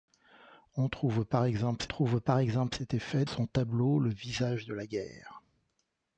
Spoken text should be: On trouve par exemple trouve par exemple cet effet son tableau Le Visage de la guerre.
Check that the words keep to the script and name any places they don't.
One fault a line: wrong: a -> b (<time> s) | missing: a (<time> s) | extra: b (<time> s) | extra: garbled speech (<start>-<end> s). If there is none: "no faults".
no faults